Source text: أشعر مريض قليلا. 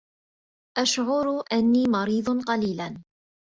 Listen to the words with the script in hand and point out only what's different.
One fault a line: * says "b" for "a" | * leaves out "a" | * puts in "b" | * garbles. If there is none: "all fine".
* puts in "أنّي"